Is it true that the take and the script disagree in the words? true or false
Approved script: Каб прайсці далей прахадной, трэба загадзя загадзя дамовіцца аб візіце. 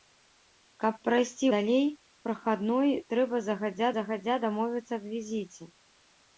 false